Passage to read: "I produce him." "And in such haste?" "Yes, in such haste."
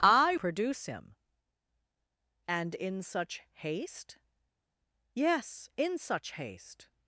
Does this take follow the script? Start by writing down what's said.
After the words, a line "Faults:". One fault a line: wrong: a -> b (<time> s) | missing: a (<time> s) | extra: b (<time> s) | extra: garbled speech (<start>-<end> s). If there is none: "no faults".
"I produce him." "And in such haste?" "Yes, in such haste."
Faults:
no faults